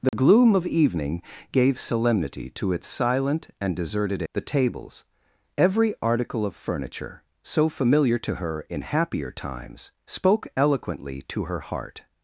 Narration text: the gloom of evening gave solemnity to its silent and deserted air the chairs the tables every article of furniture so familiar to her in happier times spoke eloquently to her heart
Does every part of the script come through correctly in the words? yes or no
no